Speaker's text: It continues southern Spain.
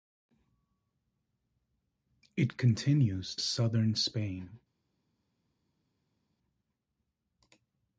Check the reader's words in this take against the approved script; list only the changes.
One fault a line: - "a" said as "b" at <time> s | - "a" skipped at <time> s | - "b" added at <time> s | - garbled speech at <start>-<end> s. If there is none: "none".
none